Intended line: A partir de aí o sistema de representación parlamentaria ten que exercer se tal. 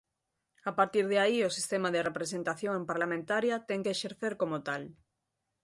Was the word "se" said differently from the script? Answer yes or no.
yes